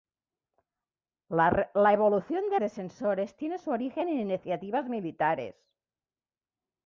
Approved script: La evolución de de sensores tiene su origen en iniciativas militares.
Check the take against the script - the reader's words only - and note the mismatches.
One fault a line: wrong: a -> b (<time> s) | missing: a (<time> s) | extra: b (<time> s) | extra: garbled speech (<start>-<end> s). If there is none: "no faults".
no faults